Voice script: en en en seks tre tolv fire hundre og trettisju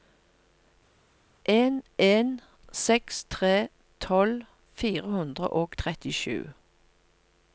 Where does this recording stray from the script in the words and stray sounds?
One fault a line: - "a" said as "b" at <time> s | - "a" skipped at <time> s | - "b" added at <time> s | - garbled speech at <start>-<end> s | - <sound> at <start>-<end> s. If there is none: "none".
- "en" skipped at 2.4 s